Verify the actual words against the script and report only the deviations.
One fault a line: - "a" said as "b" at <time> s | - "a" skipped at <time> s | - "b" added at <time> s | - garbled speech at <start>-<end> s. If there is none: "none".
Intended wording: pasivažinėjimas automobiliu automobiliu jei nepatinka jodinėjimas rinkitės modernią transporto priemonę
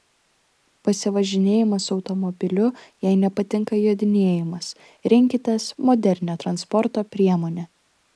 - "automobiliu" skipped at 2.7 s